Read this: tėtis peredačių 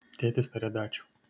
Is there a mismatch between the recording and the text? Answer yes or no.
no